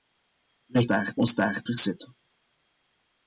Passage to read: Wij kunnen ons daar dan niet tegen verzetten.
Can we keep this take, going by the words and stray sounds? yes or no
no